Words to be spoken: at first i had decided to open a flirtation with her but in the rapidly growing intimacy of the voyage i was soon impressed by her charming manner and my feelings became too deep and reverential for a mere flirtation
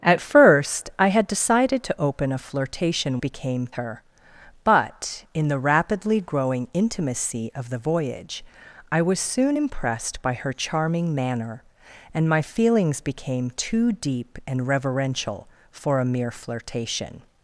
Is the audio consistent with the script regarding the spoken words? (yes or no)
no